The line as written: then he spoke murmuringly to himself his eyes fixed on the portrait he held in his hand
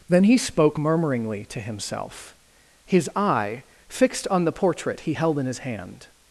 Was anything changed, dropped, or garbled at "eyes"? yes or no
yes